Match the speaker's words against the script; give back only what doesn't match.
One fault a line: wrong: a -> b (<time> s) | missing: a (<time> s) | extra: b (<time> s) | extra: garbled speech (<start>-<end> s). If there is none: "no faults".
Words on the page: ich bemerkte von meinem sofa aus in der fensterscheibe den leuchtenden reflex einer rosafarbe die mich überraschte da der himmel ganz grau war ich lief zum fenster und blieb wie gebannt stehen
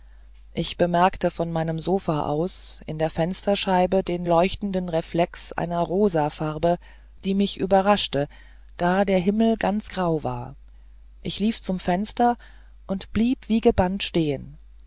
no faults